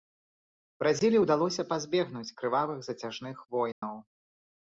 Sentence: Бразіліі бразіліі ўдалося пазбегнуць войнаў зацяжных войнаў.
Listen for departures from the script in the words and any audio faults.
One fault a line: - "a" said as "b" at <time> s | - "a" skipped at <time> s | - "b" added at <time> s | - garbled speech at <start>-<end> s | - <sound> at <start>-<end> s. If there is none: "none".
- "бразіліі" skipped at 1.2 s
- "войнаў" said as "крывавых" at 2.4 s
- dropout at 3.7-3.8 s